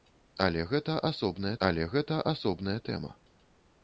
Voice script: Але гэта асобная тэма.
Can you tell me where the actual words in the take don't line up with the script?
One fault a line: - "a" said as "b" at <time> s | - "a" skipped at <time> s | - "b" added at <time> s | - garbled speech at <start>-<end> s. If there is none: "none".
- "але гэта асобная" added at 1.7 s